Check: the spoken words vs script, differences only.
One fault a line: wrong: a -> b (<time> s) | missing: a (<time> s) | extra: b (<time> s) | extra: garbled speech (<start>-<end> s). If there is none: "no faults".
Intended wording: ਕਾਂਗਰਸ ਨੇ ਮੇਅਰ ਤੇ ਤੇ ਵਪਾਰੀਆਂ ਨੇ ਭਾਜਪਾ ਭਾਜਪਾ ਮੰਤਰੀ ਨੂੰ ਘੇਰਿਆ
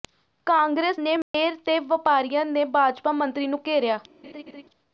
missing: ਤੇ (1.8 s)
missing: ਭਾਜਪਾ (3.1 s)